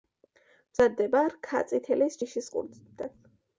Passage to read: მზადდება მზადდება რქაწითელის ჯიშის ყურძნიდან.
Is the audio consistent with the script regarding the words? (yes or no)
no